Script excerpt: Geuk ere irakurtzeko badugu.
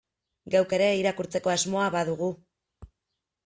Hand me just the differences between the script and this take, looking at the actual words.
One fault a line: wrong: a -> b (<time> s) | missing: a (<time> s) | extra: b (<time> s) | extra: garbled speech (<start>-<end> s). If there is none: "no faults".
extra: asmoa (1.6 s)